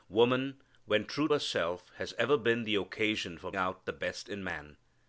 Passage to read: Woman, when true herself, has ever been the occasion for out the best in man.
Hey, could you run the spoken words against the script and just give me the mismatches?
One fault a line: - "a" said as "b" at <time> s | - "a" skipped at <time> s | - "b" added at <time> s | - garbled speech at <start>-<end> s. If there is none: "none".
none